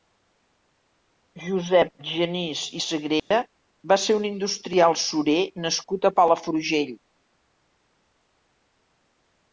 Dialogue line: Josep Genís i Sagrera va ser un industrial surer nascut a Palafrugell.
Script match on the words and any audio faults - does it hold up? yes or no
no